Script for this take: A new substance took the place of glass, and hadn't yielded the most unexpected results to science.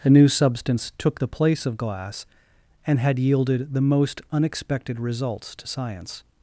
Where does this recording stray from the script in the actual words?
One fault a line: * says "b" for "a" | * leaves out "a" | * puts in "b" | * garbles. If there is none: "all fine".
* says "had" for "hadn't"